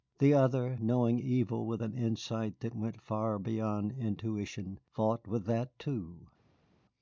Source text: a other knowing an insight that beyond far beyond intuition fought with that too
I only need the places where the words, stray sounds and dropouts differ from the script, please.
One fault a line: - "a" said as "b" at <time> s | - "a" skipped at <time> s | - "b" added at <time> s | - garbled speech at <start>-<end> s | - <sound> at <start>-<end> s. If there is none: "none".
- "a" said as "the" at 0.2 s
- "evil with" added at 1.2 s
- "beyond" said as "went" at 2.8 s